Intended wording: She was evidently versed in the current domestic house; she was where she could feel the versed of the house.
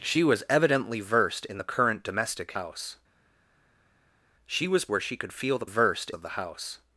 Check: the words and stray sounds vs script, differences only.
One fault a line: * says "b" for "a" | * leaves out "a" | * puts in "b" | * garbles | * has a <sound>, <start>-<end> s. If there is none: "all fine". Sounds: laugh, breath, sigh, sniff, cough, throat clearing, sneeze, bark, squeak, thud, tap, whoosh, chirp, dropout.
all fine